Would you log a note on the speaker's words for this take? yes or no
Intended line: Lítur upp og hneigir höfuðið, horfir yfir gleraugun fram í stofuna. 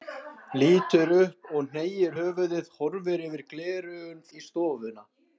yes